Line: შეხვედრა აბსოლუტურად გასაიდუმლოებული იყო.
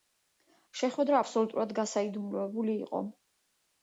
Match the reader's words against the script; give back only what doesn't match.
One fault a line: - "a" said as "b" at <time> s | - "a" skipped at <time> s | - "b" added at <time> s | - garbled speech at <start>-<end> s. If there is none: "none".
none